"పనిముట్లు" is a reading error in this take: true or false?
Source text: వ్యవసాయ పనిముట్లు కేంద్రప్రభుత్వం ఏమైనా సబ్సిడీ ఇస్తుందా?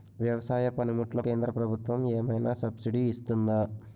false